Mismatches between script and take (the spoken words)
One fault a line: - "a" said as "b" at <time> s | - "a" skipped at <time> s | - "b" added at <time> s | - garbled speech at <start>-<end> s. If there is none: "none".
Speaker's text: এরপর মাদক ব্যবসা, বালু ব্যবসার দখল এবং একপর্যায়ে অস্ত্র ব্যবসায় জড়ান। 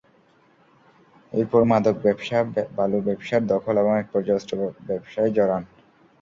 none